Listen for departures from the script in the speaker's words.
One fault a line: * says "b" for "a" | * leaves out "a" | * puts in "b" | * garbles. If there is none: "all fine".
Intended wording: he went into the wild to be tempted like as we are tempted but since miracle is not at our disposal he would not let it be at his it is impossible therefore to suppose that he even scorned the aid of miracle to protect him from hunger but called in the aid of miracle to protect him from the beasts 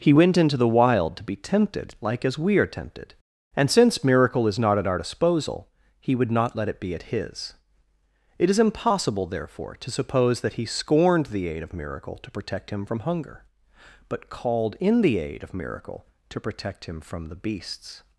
* says "and" for "but"
* leaves out "even"